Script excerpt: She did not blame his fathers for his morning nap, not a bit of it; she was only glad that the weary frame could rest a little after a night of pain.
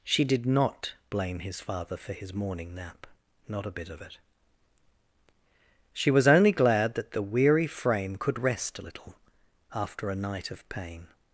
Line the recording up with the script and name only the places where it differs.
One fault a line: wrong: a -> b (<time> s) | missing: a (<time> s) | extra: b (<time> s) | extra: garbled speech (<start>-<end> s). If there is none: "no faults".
wrong: fathers -> father (1.6 s)